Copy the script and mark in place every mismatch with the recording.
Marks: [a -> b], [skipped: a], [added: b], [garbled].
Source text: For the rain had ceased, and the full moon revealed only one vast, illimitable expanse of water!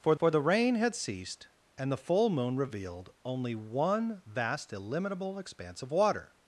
For [added: for] the rain had ceased, and the full moon revealed only one vast, illimitable expanse of water!